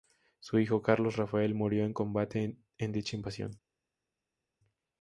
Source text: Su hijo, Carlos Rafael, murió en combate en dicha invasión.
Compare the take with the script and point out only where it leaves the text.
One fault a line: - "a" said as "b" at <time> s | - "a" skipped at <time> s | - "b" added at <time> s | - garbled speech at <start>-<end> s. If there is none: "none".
none